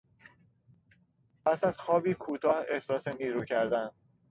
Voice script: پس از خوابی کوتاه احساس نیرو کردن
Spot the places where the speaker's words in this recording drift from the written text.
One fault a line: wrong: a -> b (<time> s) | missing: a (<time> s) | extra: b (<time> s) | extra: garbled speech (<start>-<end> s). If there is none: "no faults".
no faults